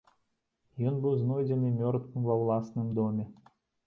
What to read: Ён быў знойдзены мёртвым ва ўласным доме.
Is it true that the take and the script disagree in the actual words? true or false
false